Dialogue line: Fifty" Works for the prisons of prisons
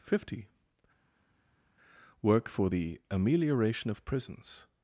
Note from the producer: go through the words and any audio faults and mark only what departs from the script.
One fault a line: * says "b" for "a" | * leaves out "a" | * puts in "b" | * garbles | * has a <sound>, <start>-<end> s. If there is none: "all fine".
* says "Work" for "Works"
* says "amelioration" for "prisons"